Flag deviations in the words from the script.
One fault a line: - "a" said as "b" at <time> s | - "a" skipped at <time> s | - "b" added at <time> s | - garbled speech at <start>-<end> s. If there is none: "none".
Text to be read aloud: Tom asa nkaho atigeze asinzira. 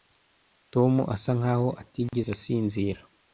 none